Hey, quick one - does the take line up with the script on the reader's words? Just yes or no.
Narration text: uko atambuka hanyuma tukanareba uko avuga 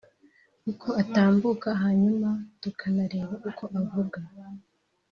yes